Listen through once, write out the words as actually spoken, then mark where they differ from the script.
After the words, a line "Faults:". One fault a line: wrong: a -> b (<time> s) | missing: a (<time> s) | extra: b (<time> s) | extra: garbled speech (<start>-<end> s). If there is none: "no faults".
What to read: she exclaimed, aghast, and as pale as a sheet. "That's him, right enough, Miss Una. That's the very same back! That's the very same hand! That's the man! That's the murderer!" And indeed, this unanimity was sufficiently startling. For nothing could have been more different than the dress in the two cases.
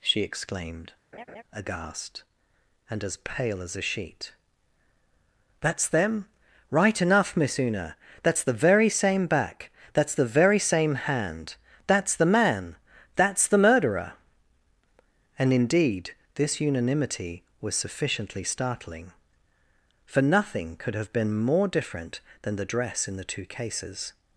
she exclaimed, aghast, and as pale as a sheet. "That's them, right enough, Miss Una. That's the very same back! That's the very same hand! That's the man! That's the murderer!" And indeed, this unanimity was sufficiently startling. For nothing could have been more different than the dress in the two cases.
Faults:
wrong: him -> them (5.9 s)